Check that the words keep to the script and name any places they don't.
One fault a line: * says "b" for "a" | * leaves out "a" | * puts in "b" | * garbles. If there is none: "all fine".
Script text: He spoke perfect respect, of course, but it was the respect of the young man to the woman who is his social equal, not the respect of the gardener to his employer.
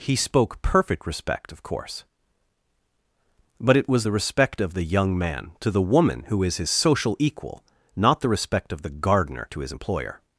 all fine